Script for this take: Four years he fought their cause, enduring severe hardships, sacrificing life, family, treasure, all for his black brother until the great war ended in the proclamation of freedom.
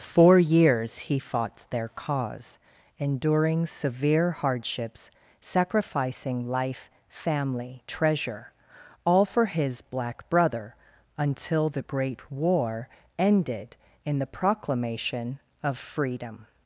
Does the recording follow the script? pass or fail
pass